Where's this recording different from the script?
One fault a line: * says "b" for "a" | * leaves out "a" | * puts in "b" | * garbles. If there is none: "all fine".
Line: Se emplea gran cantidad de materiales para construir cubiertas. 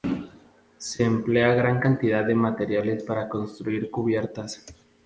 all fine